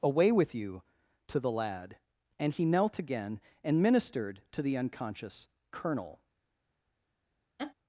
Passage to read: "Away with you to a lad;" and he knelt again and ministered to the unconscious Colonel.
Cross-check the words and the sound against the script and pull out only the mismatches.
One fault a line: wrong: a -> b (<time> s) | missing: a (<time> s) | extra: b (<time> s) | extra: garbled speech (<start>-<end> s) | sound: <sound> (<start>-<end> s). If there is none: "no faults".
wrong: a -> the (1.4 s)
sound: laugh (7.6-7.7 s)